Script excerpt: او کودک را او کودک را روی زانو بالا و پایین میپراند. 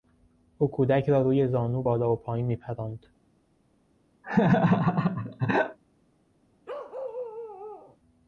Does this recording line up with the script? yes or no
no